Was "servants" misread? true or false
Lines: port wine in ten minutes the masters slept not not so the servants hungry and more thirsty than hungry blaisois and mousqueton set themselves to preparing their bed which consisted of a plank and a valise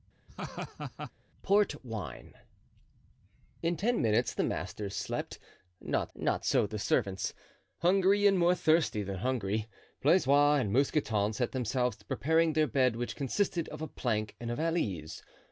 false